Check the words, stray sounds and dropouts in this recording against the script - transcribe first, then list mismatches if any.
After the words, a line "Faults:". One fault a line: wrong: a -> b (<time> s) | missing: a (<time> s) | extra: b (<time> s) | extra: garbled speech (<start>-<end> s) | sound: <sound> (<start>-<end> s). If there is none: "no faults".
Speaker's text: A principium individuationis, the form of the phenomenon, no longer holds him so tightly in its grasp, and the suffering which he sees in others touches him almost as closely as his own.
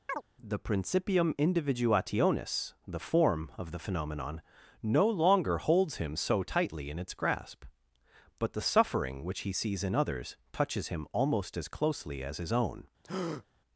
The principium individuationis, the form of the phenomenon, no longer holds him so tightly in its grasp, but the suffering which he sees in others touches him almost as closely as his own.
Faults:
sound: chirp (0.1-0.2 s)
wrong: A -> The (0.4 s)
wrong: and -> but (8.4 s)
sound: breath (13.0-13.4 s)